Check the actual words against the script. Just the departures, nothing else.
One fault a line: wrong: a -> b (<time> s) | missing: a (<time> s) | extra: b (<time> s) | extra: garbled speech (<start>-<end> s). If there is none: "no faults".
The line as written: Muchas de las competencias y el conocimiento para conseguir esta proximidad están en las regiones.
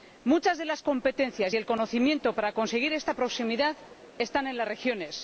no faults